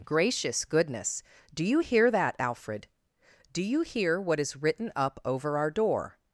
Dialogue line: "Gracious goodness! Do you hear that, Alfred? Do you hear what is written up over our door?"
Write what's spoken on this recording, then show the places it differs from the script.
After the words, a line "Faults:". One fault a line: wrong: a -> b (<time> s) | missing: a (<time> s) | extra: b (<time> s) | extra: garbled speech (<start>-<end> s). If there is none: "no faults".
"Gracious goodness! Do you hear that, Alfred? Do you hear what is written up over our door?"
Faults:
no faults